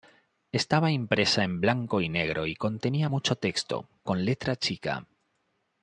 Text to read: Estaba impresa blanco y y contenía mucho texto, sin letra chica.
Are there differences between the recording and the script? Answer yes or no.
yes